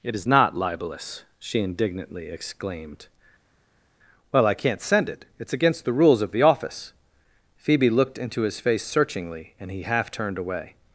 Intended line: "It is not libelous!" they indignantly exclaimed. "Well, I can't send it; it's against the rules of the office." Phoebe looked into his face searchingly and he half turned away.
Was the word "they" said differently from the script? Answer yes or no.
yes